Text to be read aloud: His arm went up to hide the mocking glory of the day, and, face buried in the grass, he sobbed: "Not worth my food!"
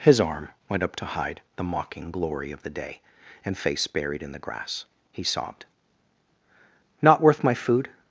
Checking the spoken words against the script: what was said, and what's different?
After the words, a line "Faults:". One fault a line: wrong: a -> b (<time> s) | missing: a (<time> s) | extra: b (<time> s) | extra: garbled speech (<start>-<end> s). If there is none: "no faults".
His arm went up to hide the mocking glory of the day, and, face buried in the grass, he sobbed: "Not worth my food!"
Faults:
no faults